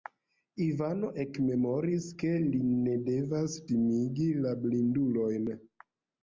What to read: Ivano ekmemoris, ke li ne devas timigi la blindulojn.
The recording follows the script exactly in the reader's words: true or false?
true